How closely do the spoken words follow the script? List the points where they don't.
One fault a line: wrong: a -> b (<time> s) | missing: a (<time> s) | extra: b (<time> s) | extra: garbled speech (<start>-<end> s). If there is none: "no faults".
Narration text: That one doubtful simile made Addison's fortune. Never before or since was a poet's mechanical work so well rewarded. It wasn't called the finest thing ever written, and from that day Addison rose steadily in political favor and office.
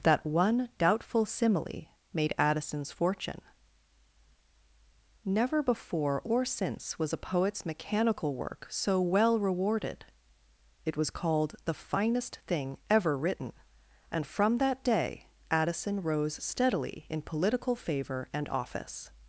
wrong: wasn't -> was (11.0 s)